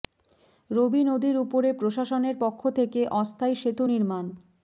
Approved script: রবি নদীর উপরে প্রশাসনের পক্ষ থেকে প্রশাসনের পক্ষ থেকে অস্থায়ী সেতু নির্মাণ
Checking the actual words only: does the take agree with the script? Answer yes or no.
no